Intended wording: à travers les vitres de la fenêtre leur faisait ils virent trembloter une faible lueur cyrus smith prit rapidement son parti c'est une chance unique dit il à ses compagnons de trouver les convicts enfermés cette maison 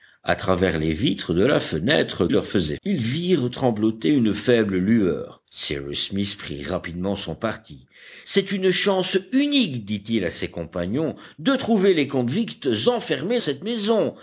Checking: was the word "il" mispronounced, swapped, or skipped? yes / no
no